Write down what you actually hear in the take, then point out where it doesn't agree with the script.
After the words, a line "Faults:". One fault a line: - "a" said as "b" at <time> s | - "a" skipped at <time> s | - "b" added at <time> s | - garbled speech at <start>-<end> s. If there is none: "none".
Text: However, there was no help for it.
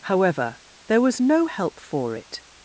However, there was no help for it.
Faults:
none